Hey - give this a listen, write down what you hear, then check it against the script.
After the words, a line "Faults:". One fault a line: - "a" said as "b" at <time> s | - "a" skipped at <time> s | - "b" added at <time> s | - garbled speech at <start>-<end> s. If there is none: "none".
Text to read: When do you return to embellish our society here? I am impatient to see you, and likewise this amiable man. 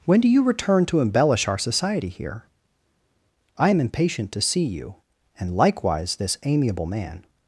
When do you return to embellish our society here? I am impatient to see you, and likewise this amiable man.
Faults:
none